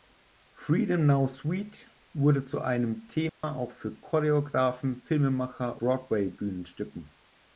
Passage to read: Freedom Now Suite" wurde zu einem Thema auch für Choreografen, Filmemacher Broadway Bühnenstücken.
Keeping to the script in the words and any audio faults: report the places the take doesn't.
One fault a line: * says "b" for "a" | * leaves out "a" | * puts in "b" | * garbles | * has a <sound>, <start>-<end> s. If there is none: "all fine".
* has a dropout, 3.3-3.4 s